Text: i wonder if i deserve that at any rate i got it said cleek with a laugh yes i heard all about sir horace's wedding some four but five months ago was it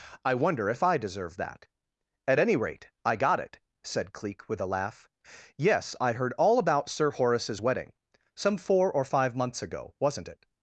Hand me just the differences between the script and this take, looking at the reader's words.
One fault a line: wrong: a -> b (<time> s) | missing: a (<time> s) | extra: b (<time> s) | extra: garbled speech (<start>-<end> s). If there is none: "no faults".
wrong: but -> or (8.9 s)
wrong: was -> wasn't (10.0 s)